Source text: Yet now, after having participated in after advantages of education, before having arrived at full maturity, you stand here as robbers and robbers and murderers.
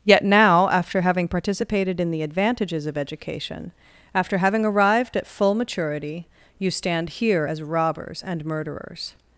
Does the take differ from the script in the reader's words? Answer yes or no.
yes